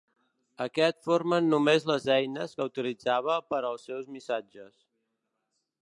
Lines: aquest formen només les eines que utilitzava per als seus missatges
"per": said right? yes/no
yes